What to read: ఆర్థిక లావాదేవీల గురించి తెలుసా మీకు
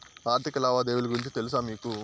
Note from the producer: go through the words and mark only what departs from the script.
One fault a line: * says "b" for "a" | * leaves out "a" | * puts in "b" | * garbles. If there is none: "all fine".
all fine